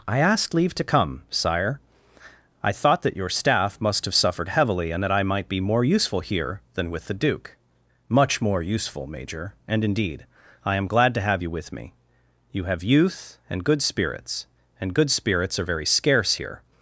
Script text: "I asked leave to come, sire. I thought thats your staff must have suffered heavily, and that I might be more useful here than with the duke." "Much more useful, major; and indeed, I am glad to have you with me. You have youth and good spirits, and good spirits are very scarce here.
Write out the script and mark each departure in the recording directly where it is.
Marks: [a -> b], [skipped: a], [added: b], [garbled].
"I asked leave to come, sire. I thought [thats -> that] your staff must have suffered heavily, and that I might be more useful here than with the duke." "Much more useful, major; and indeed, I am glad to have you with me. You have youth and good spirits, and good spirits are very scarce here.